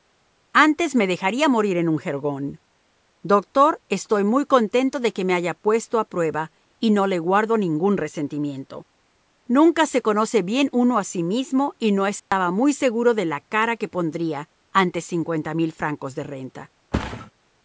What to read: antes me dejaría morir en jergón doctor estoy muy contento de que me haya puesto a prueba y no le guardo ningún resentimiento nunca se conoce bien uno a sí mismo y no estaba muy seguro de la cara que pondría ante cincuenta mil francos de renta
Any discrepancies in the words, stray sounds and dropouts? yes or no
yes